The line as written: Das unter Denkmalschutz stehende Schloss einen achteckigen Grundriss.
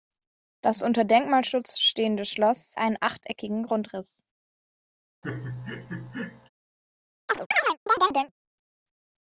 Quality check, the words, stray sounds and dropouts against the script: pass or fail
fail